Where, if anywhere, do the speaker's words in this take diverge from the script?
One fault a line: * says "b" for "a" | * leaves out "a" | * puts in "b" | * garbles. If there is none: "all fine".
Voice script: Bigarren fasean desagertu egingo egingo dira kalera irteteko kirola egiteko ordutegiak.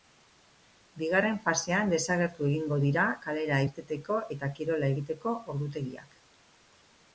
* leaves out "egingo"
* puts in "eta"